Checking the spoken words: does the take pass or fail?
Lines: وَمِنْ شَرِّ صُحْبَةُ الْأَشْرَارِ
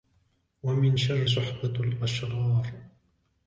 pass